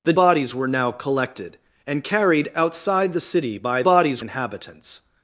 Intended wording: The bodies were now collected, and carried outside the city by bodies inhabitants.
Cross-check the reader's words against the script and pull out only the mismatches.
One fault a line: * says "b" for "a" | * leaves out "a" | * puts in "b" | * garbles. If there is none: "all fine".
all fine